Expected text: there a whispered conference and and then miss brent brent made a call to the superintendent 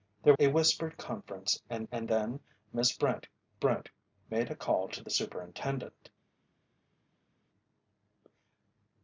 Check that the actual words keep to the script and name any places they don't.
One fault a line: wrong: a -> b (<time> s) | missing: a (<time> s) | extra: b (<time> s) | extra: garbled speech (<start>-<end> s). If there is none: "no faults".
no faults